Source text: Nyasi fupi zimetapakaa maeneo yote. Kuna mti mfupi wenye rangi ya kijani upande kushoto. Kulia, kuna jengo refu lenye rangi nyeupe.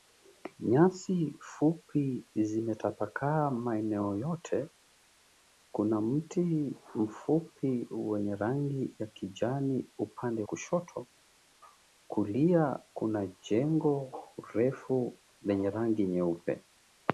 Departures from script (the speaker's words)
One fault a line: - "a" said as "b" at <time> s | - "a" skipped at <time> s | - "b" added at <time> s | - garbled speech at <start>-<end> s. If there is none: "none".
none